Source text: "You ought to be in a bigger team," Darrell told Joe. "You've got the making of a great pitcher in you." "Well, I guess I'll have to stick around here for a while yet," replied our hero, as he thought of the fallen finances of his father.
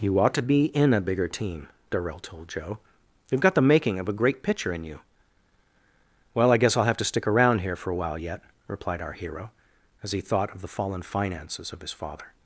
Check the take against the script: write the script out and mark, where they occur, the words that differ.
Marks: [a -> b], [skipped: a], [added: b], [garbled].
"You ought to be in a bigger team," Darrell told Joe. "You've got the making of a great pitcher in you." "Well, I guess I'll have to stick around here for a while yet," replied our hero, as he thought of the fallen finances of his father.